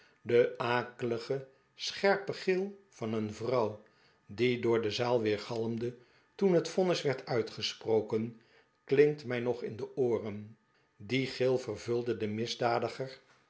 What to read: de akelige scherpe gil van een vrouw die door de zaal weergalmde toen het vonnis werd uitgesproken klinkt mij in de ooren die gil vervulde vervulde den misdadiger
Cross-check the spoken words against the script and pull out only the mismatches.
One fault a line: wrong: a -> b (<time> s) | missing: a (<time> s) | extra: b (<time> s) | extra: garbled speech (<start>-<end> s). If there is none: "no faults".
extra: nog (9.4 s)
missing: vervulde (12.2 s)